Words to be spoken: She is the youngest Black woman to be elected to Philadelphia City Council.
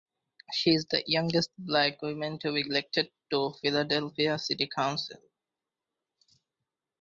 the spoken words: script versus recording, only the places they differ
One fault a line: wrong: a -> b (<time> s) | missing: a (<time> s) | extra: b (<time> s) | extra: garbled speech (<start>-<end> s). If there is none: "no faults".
no faults